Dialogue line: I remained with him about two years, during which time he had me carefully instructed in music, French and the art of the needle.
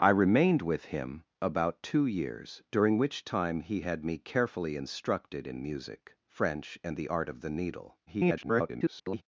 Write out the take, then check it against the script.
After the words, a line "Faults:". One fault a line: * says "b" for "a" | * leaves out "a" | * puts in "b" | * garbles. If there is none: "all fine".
I remained with him about two years, during which time he had me carefully instructed in music, French and the art of the needle. [garbled]
Faults:
* garbles